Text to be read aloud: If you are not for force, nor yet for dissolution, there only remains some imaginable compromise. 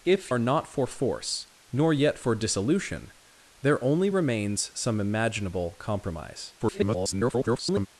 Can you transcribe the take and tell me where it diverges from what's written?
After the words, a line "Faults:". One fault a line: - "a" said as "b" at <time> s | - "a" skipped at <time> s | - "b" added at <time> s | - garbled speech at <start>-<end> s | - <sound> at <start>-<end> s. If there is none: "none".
If are not for force, nor yet for dissolution, there only remains some imaginable compromise. [garbled]
Faults:
- "you" skipped at 0.3 s
- garbled speech at 6.6-7.9 s